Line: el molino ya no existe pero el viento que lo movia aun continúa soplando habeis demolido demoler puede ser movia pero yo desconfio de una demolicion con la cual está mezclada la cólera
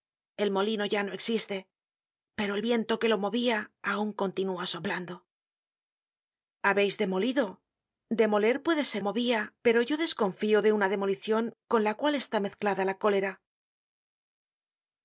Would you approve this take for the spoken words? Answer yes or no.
yes